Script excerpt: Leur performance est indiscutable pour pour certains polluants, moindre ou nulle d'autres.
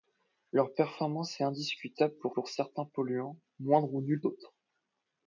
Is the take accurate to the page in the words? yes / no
yes